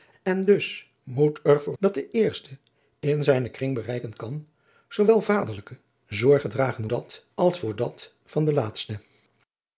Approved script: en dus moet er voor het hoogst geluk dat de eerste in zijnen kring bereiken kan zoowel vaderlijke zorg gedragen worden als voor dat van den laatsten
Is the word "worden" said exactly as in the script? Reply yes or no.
no